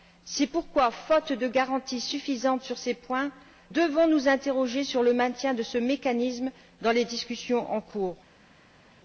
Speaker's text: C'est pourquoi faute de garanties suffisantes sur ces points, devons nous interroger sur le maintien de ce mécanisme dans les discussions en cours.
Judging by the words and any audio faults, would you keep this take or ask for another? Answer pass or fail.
pass